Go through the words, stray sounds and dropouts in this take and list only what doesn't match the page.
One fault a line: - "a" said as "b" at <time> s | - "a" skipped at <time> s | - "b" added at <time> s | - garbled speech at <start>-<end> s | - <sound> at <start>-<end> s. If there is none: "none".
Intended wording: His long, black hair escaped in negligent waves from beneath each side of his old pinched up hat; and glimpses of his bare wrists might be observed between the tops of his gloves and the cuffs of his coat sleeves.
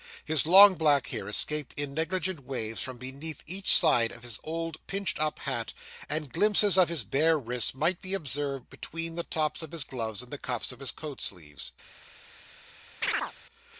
- chirp at 13.0-13.3 s